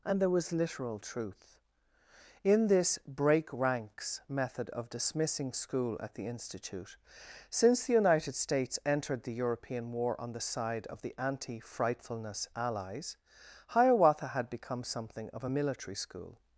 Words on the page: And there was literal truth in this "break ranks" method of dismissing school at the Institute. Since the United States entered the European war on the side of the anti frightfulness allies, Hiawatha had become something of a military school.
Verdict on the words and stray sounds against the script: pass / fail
pass